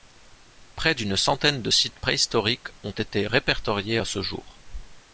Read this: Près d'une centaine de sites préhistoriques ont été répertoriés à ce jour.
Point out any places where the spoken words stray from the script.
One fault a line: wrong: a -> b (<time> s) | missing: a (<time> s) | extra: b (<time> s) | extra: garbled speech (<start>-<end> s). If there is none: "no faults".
no faults